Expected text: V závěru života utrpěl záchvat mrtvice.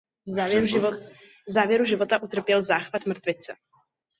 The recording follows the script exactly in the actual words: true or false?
true